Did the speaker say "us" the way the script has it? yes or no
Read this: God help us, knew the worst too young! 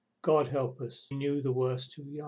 yes